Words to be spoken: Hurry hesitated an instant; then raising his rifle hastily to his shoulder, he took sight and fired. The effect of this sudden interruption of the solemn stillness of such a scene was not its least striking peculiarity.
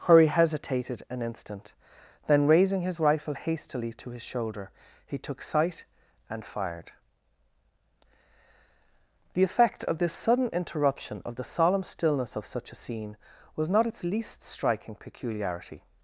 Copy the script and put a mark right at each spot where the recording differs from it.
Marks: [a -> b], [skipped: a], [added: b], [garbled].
Hurry hesitated an instant; then raising his rifle hastily to his shoulder, he took sight and fired. The effect of this sudden interruption of the solemn stillness of such a scene was not its least striking peculiarity.